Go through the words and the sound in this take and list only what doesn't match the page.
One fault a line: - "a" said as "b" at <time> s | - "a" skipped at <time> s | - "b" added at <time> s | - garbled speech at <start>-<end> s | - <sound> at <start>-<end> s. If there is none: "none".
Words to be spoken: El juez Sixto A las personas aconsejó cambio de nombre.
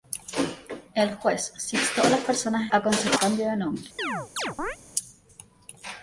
- chirp at 4.0-4.8 s